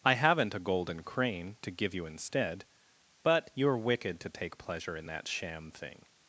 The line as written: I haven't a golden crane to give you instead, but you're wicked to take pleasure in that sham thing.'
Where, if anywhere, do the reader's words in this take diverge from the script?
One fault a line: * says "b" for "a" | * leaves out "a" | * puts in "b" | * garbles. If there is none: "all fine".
all fine